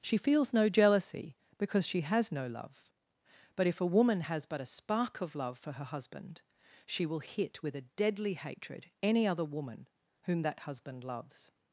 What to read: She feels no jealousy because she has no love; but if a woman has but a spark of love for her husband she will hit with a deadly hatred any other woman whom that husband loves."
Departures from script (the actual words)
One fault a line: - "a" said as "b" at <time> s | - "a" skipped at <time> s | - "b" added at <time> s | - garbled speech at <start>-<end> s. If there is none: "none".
none